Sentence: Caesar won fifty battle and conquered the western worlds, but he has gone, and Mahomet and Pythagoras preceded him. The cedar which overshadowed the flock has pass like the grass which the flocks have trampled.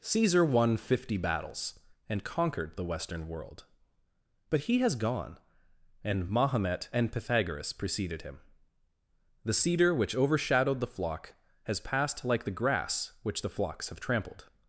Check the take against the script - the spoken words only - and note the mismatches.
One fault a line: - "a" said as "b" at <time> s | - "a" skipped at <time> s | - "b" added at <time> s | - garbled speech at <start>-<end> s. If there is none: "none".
- "battle" said as "battles" at 1.1 s
- "worlds" said as "world" at 3.3 s
- "pass" said as "passed" at 11.8 s